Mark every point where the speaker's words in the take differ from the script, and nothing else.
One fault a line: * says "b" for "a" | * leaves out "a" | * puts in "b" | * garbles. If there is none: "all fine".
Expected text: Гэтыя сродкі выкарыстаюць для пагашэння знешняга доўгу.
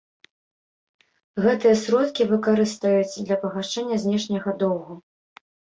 all fine